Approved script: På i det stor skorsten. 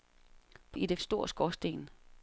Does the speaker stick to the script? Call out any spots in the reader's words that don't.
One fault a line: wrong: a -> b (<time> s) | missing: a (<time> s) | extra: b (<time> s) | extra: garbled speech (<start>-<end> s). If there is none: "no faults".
no faults